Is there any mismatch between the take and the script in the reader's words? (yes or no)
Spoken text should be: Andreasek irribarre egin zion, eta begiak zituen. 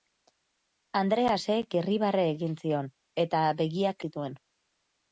no